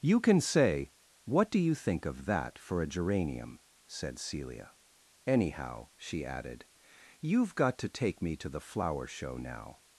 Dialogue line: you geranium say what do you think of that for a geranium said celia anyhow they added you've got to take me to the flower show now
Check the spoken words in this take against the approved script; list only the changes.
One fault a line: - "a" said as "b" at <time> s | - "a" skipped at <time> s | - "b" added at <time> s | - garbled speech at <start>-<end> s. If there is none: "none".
- "geranium" said as "can" at 0.2 s
- "they" said as "she" at 6.0 s